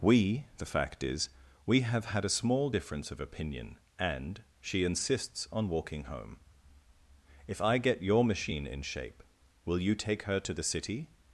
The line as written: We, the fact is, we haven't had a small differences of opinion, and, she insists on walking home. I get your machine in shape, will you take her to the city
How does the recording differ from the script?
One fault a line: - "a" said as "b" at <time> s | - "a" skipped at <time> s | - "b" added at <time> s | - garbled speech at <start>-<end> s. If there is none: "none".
- "haven't" said as "have" at 1.8 s
- "differences" said as "difference" at 2.7 s
- "If" added at 7.5 s